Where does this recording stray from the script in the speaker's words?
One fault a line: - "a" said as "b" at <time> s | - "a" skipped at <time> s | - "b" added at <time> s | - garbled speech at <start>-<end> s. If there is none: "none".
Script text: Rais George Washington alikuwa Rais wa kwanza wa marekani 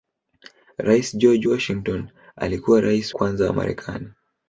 - "wa" skipped at 3.1 s